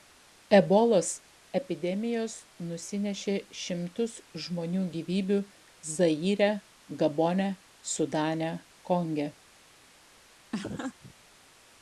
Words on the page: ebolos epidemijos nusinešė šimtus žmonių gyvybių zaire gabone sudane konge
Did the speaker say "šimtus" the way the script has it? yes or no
yes